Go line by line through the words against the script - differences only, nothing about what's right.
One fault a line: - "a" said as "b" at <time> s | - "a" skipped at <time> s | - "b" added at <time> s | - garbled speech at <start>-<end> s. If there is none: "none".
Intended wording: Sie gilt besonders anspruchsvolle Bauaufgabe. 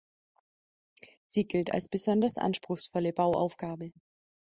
- "als" added at 1.7 s